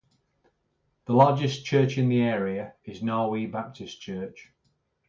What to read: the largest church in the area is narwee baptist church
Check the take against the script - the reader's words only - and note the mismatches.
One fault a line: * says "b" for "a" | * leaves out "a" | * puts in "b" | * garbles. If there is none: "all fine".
all fine